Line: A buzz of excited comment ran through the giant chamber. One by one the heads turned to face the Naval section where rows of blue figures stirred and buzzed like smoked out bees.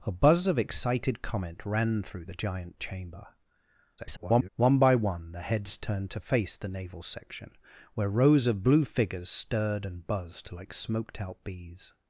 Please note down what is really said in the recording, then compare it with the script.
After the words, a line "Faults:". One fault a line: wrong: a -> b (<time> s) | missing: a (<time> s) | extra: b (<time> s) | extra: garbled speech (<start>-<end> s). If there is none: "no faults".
A buzz of excited comment ran through the giant chamber. [garbled] One by one the heads turned to face the Naval section where rows of blue figures stirred and buzzed like smoked out bees.
Faults:
extra: garbled speech (4.0-4.5 s)